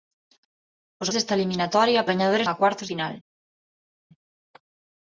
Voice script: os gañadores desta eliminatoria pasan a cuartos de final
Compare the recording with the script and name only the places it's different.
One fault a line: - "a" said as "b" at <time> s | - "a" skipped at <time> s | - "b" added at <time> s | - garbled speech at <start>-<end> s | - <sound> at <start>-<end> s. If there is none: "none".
- "gañadores" skipped at 1.1 s
- "pasan" said as "gañadores" at 2.1 s
- "de" skipped at 2.9 s